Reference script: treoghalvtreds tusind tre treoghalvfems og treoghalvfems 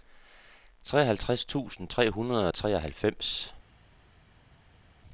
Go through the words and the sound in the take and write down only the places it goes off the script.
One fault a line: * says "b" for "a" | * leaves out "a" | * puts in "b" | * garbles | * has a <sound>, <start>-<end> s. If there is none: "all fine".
* says "hundrede" for "treoghalvfems"